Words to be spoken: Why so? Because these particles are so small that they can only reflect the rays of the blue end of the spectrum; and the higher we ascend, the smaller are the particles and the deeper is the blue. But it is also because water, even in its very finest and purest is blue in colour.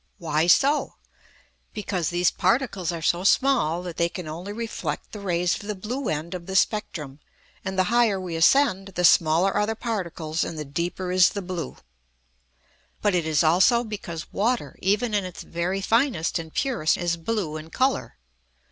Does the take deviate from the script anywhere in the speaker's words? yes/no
no